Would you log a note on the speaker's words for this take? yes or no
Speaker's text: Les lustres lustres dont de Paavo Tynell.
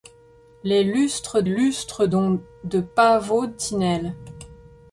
no